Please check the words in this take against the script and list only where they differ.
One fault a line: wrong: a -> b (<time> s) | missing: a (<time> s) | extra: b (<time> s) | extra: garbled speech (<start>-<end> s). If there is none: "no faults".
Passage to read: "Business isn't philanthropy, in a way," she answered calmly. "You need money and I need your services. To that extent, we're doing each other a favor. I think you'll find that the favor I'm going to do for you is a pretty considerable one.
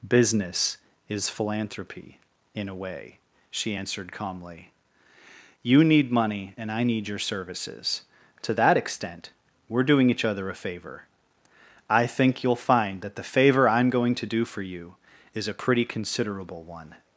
wrong: isn't -> is (1.1 s)